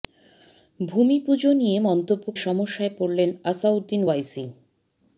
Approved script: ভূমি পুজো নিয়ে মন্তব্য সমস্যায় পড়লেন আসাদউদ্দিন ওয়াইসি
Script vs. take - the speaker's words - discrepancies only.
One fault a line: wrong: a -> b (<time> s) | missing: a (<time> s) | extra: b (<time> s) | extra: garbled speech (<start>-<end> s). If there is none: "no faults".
no faults